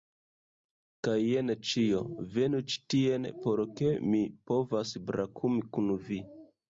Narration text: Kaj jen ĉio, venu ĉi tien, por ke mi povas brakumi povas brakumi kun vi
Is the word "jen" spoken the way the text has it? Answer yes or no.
yes